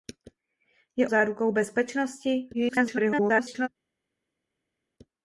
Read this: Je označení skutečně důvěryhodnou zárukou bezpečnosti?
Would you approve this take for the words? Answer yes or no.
no